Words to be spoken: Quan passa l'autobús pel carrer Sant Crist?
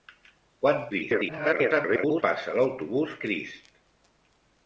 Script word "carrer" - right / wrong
wrong